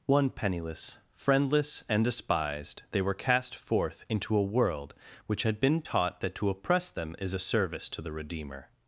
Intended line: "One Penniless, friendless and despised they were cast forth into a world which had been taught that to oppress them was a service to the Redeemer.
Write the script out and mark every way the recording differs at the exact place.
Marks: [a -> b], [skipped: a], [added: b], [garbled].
"One Penniless, friendless and despised they were cast forth into a world which had been taught that to oppress them [was -> is] a service to the Redeemer.